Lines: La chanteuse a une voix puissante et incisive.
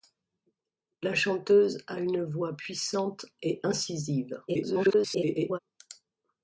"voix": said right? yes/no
yes